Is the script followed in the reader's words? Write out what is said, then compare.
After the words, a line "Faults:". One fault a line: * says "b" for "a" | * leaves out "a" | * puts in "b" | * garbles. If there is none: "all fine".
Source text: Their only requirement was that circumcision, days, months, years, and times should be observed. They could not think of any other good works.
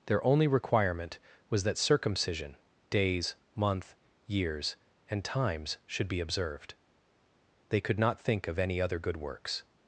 Their only requirement was that circumcision, days, month, years, and times should be observed. They could not think of any other good works.
Faults:
* says "month" for "months"